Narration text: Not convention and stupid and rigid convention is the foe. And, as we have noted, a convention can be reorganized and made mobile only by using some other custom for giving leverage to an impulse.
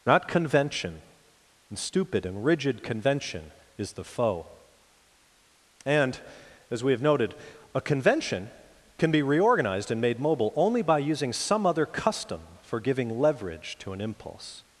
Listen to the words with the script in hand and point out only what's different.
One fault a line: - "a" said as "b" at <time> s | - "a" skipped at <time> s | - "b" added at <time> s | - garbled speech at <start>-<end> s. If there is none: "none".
none